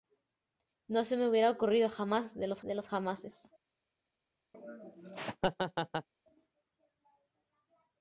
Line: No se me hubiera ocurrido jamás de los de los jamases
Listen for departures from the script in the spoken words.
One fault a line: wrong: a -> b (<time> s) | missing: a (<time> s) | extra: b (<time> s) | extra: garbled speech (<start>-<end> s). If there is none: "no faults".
no faults